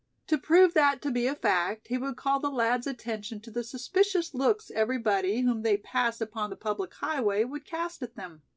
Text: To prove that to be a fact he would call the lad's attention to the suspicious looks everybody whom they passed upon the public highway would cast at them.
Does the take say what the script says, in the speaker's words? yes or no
yes